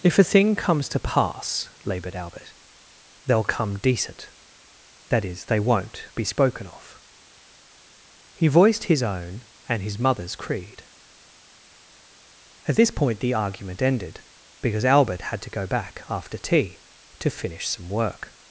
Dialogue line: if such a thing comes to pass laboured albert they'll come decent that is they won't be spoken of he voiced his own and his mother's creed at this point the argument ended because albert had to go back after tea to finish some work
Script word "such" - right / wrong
wrong